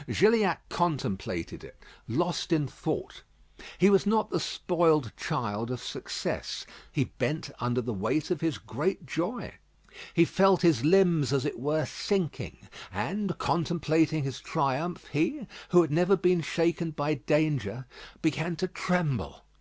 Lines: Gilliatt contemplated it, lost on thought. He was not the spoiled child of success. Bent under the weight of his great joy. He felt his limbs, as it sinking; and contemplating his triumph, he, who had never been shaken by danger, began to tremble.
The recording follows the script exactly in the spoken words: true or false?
false